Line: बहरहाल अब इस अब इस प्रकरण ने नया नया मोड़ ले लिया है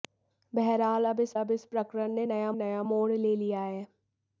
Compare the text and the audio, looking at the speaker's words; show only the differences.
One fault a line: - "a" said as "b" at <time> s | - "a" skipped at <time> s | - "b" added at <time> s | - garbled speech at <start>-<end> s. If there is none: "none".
none